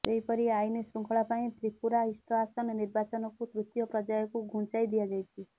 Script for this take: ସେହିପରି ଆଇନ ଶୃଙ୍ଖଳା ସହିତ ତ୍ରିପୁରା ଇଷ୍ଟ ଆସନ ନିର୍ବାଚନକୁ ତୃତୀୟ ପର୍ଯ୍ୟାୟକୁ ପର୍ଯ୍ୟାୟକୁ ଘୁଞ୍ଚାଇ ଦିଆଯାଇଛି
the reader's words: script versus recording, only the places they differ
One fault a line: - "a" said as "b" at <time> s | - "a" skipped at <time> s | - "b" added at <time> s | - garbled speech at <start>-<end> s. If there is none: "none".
- "ସହିତ" said as "ପାଇଁ" at 1.3 s
- "ପର୍ଯ୍ୟାୟକୁ" skipped at 4.5 s